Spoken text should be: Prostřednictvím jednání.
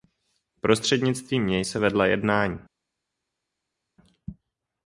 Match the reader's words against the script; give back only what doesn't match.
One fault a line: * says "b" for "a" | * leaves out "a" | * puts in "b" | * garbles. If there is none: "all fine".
* puts in "něj se vedla"